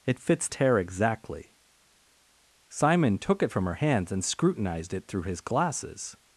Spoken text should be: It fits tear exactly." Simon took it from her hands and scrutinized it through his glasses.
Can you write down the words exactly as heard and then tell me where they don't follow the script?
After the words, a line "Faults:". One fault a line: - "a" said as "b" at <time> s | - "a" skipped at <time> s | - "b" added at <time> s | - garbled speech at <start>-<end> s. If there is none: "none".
It fits tear exactly." Simon took it from her hands and scrutinized it through his glasses.
Faults:
none